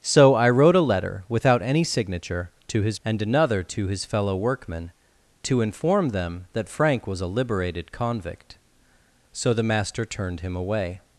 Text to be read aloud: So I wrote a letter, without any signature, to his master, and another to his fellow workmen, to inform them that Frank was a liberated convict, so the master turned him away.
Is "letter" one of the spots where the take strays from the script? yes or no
no